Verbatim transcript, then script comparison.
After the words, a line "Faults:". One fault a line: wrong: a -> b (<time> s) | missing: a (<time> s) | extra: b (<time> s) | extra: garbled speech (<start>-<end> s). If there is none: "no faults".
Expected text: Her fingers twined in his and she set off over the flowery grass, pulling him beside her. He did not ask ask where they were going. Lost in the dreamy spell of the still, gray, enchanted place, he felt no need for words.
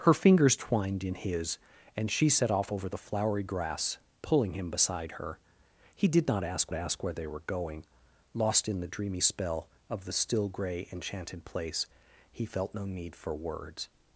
Her fingers twined in his and she set off over the flowery grass, pulling him beside her. He did not ask ask where they were going. Lost in the dreamy spell of the still, gray, enchanted place, he felt no need for words.
Faults:
no faults